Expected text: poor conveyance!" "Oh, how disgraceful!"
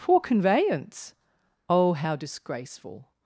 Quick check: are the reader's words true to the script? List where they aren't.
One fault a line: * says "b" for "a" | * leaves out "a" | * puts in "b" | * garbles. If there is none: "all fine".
all fine